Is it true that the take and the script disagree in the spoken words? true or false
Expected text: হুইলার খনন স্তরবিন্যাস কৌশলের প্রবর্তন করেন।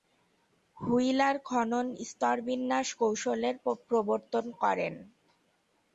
false